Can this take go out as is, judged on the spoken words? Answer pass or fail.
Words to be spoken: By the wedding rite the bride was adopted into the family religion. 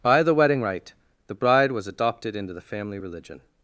pass